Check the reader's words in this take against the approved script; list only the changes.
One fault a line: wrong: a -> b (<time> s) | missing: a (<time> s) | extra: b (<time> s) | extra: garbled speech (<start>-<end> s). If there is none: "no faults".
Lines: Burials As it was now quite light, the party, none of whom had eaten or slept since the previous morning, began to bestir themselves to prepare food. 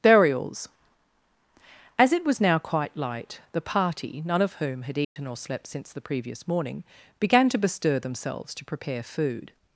no faults